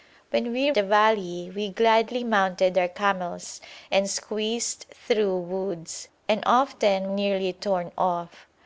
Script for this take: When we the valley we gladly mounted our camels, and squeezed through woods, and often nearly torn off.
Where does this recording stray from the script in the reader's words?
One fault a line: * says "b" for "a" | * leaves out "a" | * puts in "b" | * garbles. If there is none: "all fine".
all fine